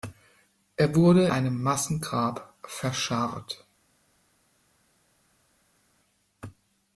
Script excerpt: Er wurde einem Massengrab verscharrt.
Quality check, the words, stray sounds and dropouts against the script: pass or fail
pass